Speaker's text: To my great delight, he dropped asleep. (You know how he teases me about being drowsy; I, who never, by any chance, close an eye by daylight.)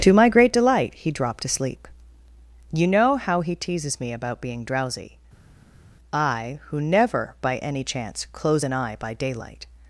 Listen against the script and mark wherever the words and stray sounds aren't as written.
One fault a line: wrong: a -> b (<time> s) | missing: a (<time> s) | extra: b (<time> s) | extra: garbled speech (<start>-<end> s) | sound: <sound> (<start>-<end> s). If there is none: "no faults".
no faults